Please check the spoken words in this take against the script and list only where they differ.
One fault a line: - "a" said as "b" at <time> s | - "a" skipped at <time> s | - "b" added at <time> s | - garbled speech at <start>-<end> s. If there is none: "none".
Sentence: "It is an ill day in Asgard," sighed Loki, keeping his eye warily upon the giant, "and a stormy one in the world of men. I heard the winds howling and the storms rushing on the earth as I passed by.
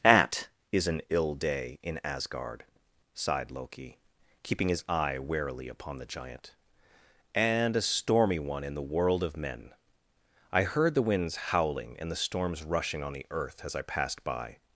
- "It" said as "At" at 0.0 s